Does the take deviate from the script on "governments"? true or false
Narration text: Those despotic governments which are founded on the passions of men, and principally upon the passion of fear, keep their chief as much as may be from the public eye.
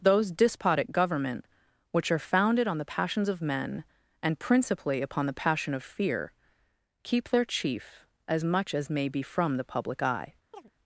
true